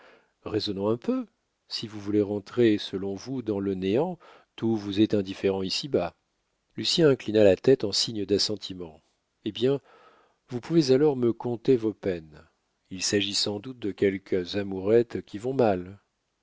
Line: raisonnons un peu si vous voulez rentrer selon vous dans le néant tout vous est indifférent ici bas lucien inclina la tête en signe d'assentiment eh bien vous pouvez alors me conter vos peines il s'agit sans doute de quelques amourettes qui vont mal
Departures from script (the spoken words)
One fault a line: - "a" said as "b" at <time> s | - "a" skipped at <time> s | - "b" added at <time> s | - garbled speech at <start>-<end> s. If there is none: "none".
none